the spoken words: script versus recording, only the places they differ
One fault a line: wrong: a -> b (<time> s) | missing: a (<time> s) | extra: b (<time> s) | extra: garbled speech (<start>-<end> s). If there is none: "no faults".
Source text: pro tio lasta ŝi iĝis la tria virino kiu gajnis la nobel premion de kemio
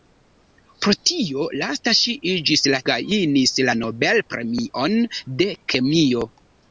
missing: tria virino kiu (2.8 s)